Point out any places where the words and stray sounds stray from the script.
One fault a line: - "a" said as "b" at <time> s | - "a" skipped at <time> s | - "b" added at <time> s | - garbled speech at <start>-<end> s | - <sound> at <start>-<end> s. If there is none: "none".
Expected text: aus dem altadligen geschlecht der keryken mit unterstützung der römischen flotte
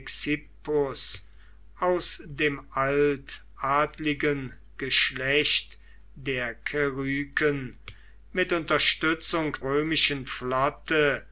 - "der" skipped at 9.6 s